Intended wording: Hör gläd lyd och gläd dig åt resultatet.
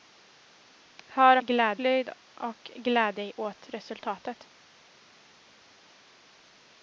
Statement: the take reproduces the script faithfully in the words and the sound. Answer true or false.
true